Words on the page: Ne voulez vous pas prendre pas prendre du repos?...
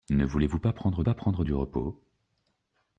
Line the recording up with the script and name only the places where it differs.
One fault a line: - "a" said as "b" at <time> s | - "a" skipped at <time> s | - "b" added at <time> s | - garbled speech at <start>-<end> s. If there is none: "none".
none